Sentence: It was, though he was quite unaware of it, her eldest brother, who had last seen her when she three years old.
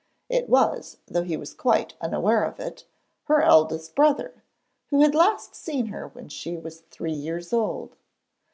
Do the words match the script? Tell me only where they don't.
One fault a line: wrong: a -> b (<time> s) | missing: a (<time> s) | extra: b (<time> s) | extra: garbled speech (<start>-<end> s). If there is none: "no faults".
extra: was (6.6 s)